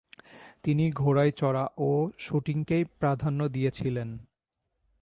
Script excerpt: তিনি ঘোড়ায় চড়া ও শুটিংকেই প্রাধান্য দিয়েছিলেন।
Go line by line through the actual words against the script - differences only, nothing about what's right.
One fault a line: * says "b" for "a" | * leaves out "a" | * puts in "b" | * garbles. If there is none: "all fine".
all fine